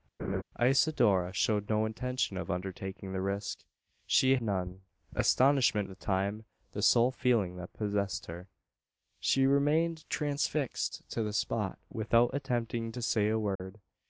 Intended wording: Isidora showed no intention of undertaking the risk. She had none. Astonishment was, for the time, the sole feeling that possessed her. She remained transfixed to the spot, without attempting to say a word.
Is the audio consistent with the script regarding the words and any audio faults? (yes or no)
no